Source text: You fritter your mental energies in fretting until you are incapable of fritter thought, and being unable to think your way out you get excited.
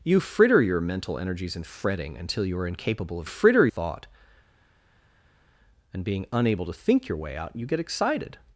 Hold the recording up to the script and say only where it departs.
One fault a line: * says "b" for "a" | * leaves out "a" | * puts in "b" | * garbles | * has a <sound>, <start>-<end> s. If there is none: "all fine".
all fine